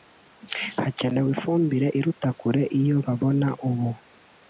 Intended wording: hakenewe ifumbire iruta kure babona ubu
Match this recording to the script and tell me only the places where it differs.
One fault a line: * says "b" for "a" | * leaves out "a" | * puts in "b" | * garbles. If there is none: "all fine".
* puts in "iyo"